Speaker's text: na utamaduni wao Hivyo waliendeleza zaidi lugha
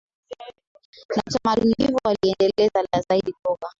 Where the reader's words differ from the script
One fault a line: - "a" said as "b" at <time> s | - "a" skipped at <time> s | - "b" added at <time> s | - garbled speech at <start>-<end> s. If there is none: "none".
- "wao" skipped at 1.8 s